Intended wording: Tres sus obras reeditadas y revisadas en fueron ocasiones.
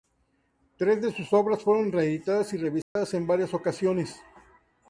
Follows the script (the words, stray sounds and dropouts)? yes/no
no